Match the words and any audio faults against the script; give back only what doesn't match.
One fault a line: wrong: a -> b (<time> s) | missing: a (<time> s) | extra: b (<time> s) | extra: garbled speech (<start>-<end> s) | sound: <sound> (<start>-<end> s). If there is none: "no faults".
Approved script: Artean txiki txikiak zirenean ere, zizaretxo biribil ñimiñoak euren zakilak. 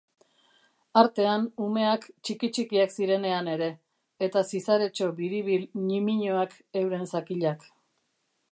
extra: umeak (1.6 s)
extra: eta (4.3 s)